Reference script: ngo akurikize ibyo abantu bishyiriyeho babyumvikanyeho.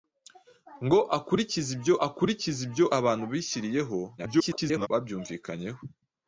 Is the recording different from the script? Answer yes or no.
yes